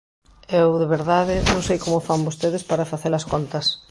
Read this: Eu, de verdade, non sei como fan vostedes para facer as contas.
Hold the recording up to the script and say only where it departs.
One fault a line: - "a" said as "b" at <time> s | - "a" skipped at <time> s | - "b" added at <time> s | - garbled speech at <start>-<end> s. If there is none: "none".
none